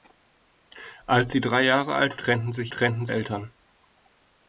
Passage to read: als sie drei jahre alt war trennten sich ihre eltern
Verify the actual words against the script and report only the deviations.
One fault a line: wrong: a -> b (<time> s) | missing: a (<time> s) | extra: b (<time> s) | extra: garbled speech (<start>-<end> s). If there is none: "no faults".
missing: war (2.2 s)
wrong: ihre -> trennten (2.7 s)